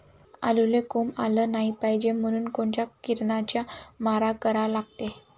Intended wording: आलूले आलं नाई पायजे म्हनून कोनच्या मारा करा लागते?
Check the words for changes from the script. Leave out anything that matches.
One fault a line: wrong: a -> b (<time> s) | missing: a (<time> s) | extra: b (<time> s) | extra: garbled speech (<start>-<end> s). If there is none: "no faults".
extra: कोंब (0.9 s)
extra: किरनाचा (3.0 s)